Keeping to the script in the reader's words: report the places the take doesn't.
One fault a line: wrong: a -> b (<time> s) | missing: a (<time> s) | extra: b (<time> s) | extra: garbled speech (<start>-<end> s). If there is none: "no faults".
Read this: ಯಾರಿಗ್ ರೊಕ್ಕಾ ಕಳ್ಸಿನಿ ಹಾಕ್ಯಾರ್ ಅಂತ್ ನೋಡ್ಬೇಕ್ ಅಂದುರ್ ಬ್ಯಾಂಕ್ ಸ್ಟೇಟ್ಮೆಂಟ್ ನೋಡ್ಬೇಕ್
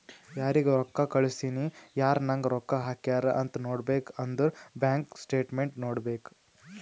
extra: ಯಾರ್ ನಂಗ್ ರೊಕ್ಕಾ (2.0 s)